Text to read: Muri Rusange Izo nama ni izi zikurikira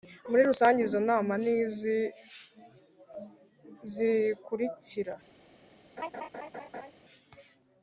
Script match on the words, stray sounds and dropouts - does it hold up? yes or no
no